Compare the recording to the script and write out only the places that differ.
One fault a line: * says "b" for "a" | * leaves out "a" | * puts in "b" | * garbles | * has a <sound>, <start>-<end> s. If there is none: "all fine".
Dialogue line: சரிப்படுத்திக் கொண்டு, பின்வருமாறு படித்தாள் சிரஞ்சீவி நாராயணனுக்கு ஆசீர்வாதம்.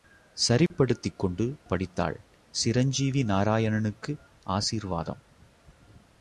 * has a dropout, 0.7-0.7 s
* leaves out "பின்வருமாறு"